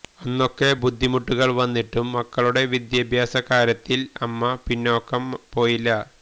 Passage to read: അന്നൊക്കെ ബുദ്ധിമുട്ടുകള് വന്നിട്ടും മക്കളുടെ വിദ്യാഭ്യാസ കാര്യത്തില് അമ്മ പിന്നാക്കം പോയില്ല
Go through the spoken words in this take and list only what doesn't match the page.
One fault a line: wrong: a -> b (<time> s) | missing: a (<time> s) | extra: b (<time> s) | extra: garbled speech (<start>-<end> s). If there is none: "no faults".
no faults